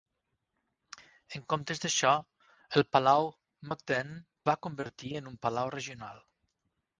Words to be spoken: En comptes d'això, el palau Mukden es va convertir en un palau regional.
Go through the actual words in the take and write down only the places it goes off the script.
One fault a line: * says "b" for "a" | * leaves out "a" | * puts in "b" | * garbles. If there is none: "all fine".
* leaves out "es"